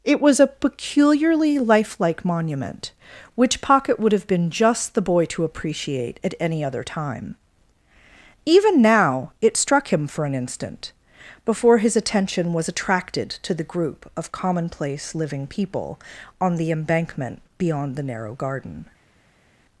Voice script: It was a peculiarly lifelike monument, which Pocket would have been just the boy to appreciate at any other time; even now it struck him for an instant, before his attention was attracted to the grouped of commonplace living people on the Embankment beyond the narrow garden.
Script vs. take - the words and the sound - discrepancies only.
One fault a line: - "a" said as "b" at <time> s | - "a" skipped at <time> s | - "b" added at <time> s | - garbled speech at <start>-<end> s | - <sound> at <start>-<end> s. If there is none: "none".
- "grouped" said as "group" at 13.7 s